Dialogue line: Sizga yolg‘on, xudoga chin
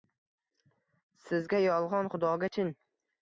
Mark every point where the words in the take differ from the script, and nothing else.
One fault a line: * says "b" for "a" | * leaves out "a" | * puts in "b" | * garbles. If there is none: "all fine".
all fine